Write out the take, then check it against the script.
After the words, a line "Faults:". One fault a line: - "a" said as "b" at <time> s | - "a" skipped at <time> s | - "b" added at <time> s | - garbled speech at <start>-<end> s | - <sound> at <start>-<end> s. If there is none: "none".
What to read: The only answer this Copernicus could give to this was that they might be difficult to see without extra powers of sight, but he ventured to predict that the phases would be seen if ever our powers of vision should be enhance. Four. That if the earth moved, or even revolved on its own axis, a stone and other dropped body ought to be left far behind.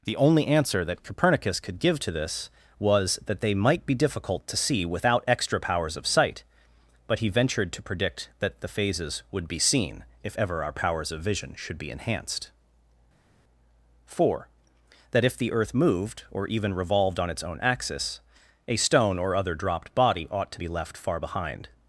The only answer that Copernicus could give to this was that they might be difficult to see without extra powers of sight, but he ventured to predict that the phases would be seen if ever our powers of vision should be enhanced. Four. That if the earth moved, or even revolved on its own axis, a stone or other dropped body ought to be left far behind.
Faults:
- "this" said as "that" at 0.8 s
- "enhance" said as "enhanced" at 11.9 s
- "and" said as "or" at 19.2 s